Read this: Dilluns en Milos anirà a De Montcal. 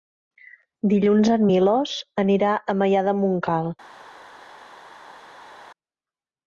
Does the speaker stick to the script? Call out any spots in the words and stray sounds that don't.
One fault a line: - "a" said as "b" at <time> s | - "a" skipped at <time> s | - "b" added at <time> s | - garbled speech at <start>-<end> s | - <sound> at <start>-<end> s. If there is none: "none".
- "Maià" added at 2.8 s